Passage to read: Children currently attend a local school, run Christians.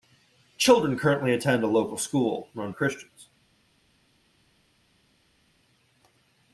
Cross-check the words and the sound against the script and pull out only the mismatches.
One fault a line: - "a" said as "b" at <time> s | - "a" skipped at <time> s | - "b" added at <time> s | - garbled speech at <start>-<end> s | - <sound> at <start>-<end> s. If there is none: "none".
none